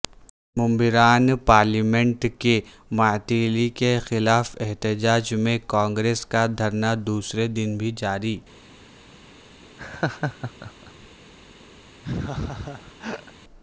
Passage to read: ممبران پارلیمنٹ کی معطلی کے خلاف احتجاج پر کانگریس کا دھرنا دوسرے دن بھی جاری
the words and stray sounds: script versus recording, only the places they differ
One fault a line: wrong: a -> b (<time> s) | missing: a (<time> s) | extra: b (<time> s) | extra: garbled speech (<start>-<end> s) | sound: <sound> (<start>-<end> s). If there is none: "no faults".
wrong: پر -> میں (5.4 s)
sound: laugh (9.8-11.1 s)
sound: laugh (12.0-13.3 s)